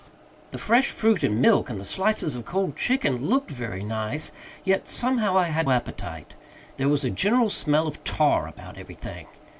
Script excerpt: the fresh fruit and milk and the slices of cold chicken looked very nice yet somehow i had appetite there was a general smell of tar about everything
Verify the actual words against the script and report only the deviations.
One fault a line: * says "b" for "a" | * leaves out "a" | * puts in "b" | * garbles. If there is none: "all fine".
all fine